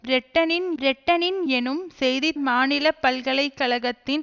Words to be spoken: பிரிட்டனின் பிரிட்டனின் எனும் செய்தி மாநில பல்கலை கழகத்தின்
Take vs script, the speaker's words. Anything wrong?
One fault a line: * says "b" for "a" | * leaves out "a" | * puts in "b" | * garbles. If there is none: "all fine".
all fine